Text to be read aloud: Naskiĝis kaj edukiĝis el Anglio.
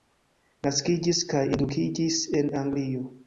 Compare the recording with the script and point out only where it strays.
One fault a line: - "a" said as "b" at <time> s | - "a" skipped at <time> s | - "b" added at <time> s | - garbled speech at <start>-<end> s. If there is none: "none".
- "el" said as "en" at 2.4 s